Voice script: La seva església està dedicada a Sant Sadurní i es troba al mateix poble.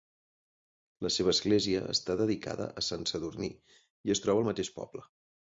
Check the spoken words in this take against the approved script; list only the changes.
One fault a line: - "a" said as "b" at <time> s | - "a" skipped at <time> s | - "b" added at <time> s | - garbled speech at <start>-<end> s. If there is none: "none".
none